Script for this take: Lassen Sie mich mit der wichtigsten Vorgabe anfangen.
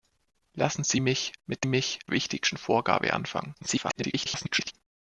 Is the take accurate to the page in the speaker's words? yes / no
no